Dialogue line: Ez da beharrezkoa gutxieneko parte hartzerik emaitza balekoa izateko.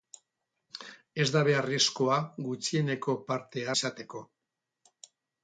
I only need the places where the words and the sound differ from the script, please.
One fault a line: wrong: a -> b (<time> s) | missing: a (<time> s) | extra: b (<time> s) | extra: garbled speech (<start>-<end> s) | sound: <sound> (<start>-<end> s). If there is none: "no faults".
missing: hartzerik emaitza balekoa (3.7 s)